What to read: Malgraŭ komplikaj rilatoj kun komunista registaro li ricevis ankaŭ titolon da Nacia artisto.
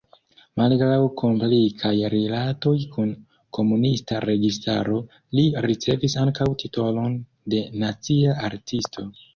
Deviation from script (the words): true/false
true